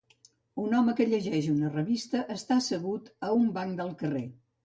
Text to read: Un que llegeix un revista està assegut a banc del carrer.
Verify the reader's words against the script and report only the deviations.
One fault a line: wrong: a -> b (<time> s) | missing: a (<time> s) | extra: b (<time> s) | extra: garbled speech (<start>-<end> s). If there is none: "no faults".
extra: home (0.8 s)
wrong: un -> una (1.6 s)
extra: un (3.4 s)